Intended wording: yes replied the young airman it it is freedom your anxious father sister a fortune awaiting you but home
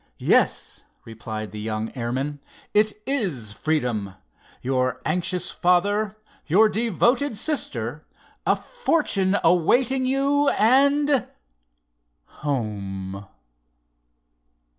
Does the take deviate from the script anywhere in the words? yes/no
yes